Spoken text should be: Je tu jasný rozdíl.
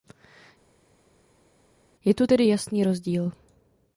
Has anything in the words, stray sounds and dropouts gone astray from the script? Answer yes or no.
yes